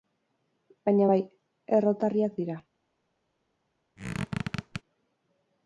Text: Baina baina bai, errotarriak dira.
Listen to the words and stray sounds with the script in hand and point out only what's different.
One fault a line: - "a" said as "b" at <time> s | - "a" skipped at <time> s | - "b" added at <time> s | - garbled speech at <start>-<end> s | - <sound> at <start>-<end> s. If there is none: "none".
- "baina" skipped at 1.1 s
- squeak at 4.0-4.8 s